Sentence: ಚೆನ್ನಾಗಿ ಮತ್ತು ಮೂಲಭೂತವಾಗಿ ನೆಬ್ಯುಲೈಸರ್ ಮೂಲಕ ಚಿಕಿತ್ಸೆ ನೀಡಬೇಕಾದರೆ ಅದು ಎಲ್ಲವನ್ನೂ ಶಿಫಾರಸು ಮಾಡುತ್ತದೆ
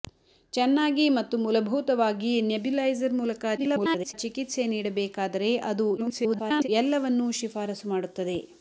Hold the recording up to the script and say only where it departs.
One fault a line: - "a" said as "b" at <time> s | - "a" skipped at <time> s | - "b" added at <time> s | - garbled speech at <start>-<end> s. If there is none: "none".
- garbled speech at 3.6-4.1 s
- garbled speech at 6.0-6.7 s